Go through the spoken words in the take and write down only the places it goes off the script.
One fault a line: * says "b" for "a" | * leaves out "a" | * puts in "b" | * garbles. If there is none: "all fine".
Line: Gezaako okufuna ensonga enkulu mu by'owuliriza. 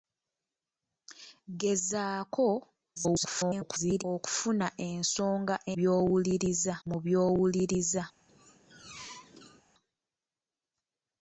* garbles
* says "by'owuliriza" for "enkulu"